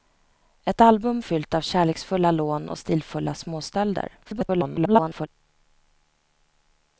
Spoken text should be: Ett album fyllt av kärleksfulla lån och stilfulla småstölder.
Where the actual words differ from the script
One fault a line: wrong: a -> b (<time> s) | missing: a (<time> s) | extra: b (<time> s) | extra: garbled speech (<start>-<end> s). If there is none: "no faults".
extra: garbled speech (4.2-5.3 s)